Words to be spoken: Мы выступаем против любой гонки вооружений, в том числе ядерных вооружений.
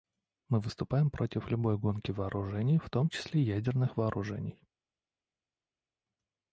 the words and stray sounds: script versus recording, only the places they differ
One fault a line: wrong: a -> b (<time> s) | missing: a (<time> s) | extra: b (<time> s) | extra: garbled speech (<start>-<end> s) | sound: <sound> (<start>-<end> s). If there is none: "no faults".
no faults